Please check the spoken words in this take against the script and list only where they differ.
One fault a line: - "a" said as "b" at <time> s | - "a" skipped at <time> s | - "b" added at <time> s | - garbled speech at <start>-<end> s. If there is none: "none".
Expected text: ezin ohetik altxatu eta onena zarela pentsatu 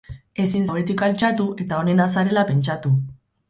none